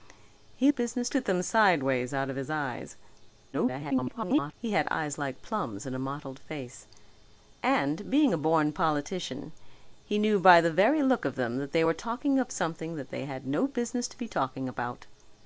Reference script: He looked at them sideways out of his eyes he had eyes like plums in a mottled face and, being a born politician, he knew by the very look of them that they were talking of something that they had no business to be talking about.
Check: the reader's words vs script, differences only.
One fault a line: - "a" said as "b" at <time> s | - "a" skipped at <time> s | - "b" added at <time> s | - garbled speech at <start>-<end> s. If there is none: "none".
- "looked" said as "business" at 0.7 s
- garbled speech at 3.5-4.5 s